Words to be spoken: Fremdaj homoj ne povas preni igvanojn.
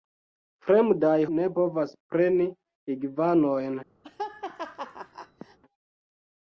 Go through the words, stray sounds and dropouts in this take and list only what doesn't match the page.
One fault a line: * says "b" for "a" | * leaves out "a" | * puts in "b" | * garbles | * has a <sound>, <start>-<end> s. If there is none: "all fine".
* leaves out "homoj"
* has a laugh, 4.0-5.6 s